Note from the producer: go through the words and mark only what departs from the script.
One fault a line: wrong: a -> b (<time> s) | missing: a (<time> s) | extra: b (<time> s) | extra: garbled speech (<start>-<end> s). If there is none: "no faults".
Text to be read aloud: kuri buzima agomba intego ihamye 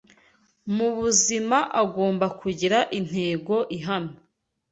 wrong: kuri -> mu (0.8 s)
extra: kugira (2.4 s)